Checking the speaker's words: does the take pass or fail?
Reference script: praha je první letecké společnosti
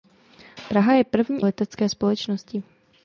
pass